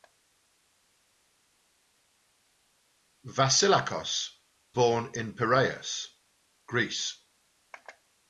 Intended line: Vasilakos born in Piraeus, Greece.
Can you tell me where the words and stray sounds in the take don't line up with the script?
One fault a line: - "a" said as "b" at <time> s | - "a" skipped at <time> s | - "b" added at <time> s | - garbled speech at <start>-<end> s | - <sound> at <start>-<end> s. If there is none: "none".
none